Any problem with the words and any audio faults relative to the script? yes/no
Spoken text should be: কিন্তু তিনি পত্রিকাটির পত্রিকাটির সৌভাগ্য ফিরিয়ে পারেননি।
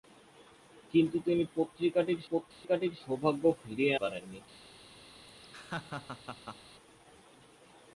yes